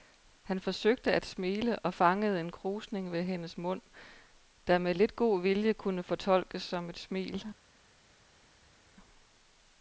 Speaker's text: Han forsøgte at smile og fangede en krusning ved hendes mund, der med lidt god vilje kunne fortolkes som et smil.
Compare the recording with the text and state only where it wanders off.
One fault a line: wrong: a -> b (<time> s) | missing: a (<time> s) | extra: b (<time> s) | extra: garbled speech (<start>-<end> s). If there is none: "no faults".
no faults